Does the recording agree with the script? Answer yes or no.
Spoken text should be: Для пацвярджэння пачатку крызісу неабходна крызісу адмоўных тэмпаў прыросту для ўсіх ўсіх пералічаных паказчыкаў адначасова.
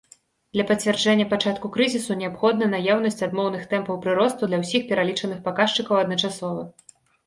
no